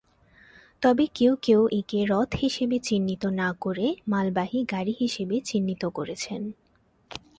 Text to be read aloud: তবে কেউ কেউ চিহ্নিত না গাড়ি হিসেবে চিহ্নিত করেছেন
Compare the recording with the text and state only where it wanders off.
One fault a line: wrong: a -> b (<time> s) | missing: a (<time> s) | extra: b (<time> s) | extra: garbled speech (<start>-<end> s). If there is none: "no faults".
extra: একে রথ হিসেবে (1.7 s)
extra: করে মালবাহী (3.6 s)